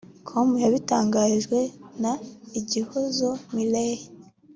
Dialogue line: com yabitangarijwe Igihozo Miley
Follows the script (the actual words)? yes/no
no